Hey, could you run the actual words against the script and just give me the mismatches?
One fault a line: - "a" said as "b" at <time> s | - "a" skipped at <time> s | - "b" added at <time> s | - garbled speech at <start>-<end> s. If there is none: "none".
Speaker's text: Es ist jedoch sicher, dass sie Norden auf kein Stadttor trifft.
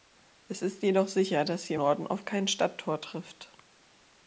none